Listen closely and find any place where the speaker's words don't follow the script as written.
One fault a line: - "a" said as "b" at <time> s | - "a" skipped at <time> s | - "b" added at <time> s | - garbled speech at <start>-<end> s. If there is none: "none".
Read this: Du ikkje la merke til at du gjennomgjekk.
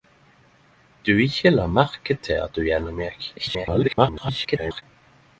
- garbled speech at 3.4-4.8 s